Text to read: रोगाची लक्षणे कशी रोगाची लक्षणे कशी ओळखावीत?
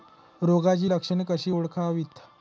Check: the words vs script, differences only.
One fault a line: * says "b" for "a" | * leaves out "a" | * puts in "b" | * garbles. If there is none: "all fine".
* leaves out "रोगाची लक्षणे कशी"